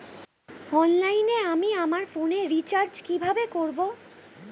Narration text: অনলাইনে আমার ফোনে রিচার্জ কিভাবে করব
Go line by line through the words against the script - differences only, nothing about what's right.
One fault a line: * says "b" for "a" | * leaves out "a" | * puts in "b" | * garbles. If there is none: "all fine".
* puts in "আমি"